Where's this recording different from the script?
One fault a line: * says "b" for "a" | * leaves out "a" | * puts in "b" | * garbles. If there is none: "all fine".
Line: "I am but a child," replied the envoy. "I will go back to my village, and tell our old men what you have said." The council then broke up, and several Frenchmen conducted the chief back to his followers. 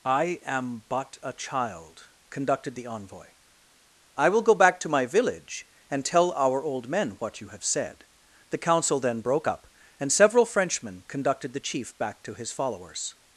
* says "conducted" for "replied"